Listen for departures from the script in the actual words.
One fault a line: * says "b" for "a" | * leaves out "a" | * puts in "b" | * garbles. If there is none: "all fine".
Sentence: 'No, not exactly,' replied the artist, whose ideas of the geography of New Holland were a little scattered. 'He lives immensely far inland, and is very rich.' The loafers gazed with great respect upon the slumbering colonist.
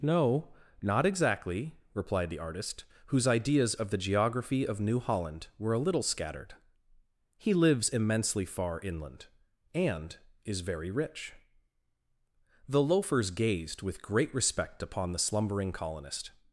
all fine